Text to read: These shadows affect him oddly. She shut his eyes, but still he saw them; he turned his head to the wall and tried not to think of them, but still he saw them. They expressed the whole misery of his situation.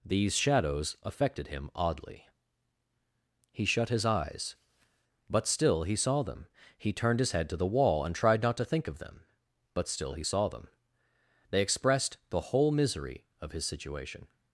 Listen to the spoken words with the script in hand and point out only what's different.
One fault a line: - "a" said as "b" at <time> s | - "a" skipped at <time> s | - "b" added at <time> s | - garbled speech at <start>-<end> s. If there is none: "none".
- "affect" said as "affected" at 1.0 s
- "She" said as "He" at 3.5 s